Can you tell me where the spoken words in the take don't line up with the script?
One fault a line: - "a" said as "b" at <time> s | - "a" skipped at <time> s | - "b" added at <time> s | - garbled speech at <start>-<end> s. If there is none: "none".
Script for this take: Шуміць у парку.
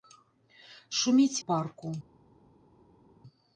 none